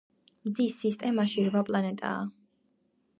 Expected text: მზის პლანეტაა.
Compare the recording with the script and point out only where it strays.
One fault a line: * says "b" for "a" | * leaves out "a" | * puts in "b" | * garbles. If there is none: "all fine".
* puts in "სისტემაში რვა"